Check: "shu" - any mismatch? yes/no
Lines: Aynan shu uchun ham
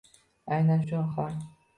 yes